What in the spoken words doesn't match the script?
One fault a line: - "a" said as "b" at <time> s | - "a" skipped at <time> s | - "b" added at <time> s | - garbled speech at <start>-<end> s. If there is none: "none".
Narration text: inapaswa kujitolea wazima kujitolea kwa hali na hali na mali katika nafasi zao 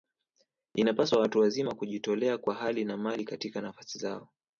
- "kujitolea" said as "watu" at 1.2 s
- "hali na" skipped at 3.0 s